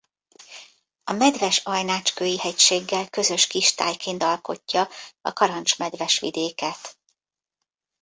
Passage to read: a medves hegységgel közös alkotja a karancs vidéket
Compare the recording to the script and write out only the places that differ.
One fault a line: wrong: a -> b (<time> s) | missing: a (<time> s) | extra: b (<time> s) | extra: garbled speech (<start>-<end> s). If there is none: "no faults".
extra: ajnácskői (1.6 s)
extra: kistájként (3.5 s)
extra: medves (5.8 s)